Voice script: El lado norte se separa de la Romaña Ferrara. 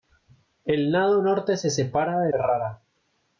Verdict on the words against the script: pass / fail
fail